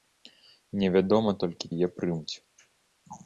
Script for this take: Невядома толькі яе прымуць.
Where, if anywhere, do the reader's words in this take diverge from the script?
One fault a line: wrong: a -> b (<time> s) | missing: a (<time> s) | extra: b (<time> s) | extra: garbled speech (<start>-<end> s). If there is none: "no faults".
no faults